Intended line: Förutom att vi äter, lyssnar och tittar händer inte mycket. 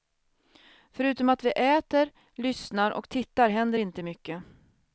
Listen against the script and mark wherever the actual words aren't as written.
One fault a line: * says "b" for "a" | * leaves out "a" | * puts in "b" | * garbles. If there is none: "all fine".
all fine